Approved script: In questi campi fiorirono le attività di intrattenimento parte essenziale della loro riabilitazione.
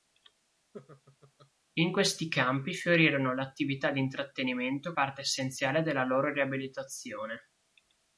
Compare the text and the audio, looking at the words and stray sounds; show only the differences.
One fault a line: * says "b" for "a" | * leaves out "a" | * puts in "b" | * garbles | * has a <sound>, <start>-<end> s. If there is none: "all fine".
* has a laugh, 0.7-1.5 s